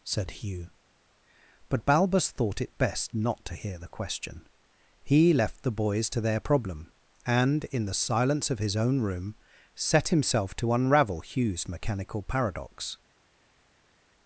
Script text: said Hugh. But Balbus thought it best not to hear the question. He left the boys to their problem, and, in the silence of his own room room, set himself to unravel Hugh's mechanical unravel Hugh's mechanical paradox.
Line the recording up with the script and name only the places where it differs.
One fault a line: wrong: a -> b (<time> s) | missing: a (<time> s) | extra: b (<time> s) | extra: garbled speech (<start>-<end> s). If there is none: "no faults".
missing: room (9.3 s)
missing: unravel Hugh's mechanical (12.2 s)